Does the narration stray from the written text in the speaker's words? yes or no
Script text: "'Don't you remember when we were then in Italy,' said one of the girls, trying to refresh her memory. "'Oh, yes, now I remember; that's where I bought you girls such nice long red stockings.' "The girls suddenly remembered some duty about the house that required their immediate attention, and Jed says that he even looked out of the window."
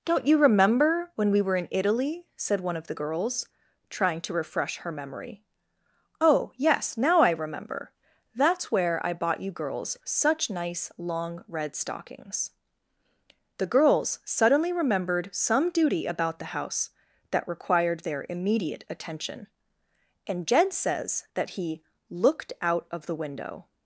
yes